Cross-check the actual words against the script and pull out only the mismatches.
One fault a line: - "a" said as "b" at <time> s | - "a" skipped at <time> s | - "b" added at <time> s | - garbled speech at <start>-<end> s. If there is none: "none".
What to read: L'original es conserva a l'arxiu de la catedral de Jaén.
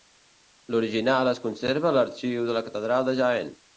none